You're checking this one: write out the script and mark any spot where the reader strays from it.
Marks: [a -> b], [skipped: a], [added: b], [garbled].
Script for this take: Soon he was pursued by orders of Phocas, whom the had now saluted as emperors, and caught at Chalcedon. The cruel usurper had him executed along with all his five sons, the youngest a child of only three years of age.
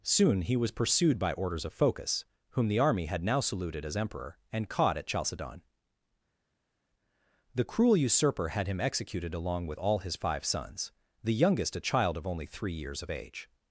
Soon he was pursued by orders of Phocas, whom the [added: army] had now saluted as [emperors, -> emperor] and caught at Chalcedon. The cruel usurper had him executed along with all his five sons, the youngest a child of only three years of age.